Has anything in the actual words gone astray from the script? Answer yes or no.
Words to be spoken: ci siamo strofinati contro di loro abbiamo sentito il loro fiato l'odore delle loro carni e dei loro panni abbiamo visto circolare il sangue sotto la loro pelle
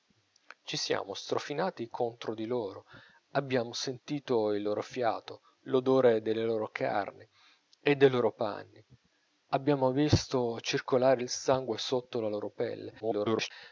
yes